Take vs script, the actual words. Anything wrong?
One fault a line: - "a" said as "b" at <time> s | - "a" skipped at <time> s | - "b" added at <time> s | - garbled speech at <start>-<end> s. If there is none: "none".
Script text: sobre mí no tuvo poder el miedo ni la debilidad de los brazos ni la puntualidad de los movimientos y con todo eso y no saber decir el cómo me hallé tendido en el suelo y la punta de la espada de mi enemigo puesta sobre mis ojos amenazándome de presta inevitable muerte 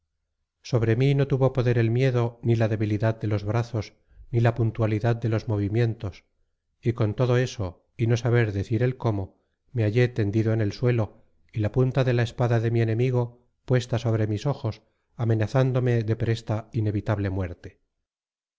none